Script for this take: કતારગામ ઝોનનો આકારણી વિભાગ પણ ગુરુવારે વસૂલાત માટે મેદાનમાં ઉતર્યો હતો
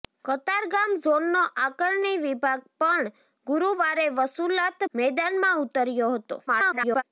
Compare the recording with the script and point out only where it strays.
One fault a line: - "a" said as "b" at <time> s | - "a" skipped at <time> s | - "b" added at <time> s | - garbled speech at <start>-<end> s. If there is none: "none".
- "માટે" skipped at 4.9 s
- garbled speech at 6.5-7.0 s